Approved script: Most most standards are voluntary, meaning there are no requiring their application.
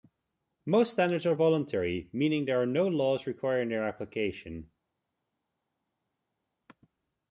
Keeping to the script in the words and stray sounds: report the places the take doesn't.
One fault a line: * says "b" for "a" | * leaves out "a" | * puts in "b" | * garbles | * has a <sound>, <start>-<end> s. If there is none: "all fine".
* leaves out "most"
* puts in "laws"